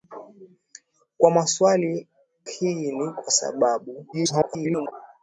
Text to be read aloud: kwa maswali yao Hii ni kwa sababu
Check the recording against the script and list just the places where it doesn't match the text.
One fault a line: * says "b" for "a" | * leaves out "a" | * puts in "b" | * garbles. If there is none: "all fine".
* leaves out "yao"
* garbles